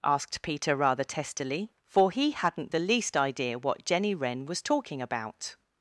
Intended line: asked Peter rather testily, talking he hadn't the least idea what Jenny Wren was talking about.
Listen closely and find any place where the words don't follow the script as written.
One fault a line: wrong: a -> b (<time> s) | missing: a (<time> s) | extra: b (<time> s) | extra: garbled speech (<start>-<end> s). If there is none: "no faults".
wrong: talking -> for (1.9 s)